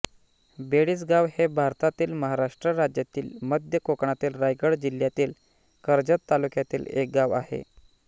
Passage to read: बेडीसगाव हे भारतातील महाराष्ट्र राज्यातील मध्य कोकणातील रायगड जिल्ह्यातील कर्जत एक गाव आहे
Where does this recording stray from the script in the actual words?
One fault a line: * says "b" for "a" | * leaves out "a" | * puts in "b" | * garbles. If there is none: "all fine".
* puts in "तालुक्यातील"